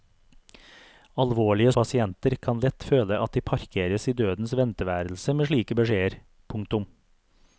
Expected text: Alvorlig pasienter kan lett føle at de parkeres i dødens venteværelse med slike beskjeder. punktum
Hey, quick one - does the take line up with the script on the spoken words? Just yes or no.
yes